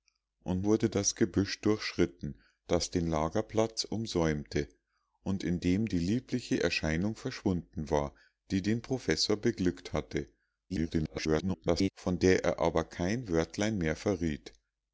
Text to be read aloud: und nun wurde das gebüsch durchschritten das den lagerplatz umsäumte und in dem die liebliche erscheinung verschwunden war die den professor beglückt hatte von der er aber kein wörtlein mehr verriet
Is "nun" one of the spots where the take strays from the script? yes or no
yes